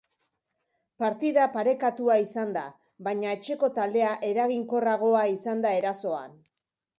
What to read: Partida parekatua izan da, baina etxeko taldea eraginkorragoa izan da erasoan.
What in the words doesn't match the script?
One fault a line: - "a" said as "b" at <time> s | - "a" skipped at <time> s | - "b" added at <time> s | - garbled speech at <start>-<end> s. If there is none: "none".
none